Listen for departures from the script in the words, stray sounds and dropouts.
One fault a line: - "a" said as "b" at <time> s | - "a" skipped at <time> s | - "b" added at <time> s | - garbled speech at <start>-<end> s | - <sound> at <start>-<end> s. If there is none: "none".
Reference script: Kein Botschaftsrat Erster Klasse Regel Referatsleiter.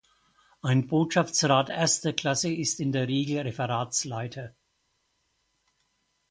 - "Kein" said as "Ein" at 0.6 s
- "ist in der" added at 2.5 s